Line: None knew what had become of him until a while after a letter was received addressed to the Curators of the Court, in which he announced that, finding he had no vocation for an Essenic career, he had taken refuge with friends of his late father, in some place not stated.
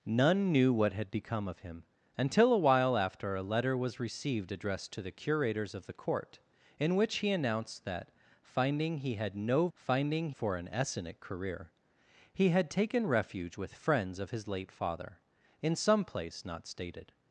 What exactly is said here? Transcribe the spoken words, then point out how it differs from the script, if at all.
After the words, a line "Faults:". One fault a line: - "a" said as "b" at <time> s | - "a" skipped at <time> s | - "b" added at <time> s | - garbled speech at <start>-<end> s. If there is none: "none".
None knew what had become of him until a while after a letter was received addressed to the Curators of the Court, in which he announced that, finding he had no finding for an Essenic career, he had taken refuge with friends of his late father, in some place not stated.
Faults:
- "vocation" said as "finding" at 9.7 s